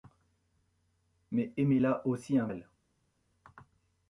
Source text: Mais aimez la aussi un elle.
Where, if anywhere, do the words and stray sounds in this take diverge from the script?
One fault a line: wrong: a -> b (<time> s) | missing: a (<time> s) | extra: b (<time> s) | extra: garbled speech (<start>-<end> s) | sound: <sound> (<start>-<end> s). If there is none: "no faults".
no faults